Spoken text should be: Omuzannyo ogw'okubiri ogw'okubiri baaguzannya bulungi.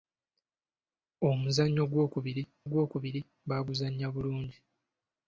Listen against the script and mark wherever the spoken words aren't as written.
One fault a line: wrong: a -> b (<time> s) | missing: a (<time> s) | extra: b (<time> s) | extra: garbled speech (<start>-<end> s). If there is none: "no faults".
no faults